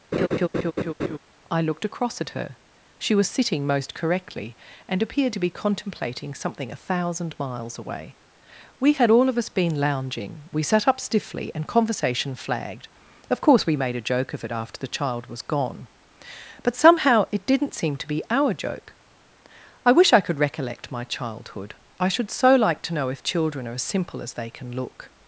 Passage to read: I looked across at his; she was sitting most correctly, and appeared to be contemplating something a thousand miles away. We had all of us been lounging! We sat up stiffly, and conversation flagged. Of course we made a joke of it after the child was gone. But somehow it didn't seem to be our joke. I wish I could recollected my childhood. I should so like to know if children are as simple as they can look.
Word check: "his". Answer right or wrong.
wrong